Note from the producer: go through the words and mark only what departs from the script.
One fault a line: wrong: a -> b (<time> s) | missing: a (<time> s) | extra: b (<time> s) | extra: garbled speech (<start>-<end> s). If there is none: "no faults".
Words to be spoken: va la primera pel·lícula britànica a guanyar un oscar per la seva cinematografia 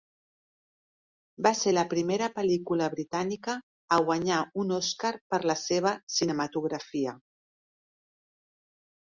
extra: ser (1.6 s)